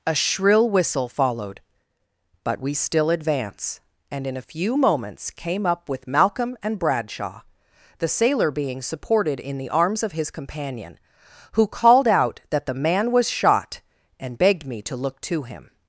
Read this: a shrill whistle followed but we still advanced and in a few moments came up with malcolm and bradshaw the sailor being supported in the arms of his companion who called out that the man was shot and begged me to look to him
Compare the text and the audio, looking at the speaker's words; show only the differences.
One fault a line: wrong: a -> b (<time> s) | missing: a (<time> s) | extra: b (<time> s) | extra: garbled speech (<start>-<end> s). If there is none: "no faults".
wrong: advanced -> advance (3.1 s)